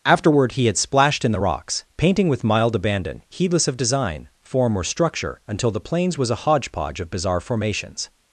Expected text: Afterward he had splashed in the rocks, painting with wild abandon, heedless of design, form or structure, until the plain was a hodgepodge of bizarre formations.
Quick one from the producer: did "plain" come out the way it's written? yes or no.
no